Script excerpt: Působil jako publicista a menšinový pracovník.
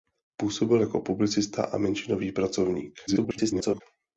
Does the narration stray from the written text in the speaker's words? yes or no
yes